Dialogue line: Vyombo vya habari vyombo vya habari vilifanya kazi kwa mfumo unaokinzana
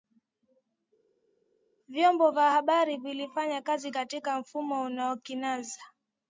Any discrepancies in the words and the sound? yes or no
yes